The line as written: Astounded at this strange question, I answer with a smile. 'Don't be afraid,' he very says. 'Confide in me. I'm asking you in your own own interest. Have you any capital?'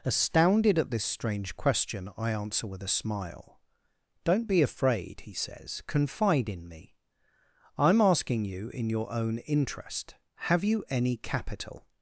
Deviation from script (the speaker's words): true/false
true